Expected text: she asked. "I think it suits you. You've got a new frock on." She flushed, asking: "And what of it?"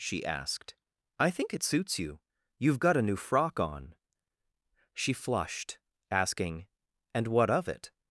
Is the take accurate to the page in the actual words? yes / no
yes